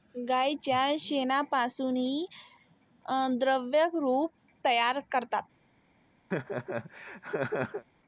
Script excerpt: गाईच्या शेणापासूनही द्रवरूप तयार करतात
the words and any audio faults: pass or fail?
fail